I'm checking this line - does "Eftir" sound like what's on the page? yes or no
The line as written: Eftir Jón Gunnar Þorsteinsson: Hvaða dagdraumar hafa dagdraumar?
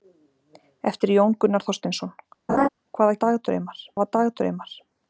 yes